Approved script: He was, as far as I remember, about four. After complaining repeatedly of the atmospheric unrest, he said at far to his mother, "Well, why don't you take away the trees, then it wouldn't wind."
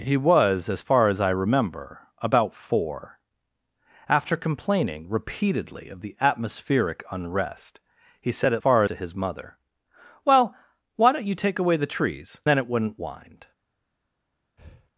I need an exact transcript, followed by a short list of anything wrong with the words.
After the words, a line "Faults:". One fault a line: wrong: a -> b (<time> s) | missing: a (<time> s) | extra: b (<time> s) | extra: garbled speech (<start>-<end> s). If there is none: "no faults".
He was, as far as I remember, about four. After complaining repeatedly of the atmospheric unrest, he said at far to his mother, "Well, why don't you take away the trees, then it wouldn't wind."
Faults:
no faults